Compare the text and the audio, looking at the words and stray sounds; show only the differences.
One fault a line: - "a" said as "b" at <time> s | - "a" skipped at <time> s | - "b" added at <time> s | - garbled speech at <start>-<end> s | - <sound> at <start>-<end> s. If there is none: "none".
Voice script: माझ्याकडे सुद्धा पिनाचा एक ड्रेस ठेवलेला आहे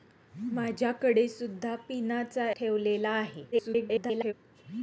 - "एक ड्रेस" skipped at 2.5 s
- garbled speech at 3.5-4.3 s